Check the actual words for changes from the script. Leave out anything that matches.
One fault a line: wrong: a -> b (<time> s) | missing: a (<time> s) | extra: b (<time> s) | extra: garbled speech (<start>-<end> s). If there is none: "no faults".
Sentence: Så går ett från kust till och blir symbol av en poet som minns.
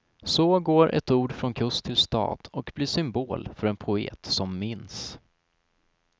extra: ord (1.1 s)
extra: stad (2.0 s)
wrong: av -> för (3.6 s)